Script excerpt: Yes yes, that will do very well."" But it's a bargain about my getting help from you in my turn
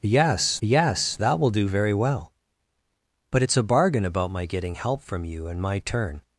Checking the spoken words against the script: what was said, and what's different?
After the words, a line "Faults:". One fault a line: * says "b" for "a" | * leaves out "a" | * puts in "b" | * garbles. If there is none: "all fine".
Yes yes, that will do very well."" But it's a bargain about my getting help from you in my turn
Faults:
all fine